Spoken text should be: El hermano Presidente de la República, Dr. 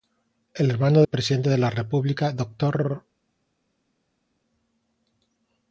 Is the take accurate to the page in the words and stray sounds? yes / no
yes